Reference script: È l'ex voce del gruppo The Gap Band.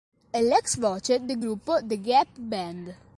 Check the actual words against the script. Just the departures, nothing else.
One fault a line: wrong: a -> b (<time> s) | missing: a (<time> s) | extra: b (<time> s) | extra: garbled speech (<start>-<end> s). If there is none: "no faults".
no faults